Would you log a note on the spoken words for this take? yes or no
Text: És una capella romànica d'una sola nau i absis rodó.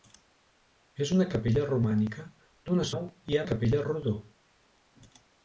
yes